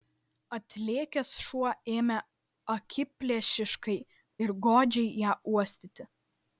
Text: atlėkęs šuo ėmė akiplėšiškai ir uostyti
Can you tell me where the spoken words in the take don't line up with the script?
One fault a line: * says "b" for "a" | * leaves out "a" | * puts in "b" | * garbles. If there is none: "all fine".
* puts in "godžiai ją"